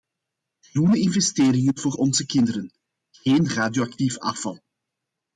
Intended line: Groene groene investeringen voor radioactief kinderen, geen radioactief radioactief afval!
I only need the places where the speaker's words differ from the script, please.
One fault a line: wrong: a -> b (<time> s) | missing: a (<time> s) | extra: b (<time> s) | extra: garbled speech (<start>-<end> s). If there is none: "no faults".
missing: groene (1.0 s)
wrong: radioactief -> onze (1.9 s)
missing: radioactief (4.2 s)